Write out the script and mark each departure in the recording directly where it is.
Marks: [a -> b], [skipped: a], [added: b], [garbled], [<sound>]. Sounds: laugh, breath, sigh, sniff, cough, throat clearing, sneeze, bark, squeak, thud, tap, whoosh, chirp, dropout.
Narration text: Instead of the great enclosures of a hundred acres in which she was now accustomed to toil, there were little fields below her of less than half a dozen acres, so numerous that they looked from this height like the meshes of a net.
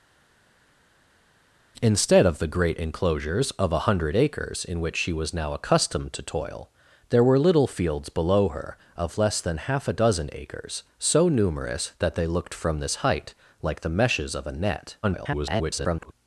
Instead of the great enclosures of a hundred acres in which she was now accustomed to toil, there were little fields below her of less than half a dozen acres, so numerous that they looked from this height like the meshes of a net. [garbled]